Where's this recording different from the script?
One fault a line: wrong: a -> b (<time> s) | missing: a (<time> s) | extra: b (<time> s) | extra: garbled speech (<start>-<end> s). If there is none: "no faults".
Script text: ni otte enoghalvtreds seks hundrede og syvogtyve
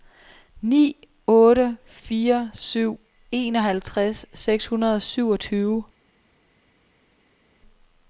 extra: fire syv (1.9 s)